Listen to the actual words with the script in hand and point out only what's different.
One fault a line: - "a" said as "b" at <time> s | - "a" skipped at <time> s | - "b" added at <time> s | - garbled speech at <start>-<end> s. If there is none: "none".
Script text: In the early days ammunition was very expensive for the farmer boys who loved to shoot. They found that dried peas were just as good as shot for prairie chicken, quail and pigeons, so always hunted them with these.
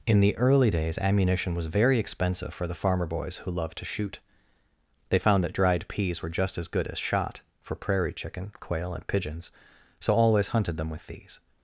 none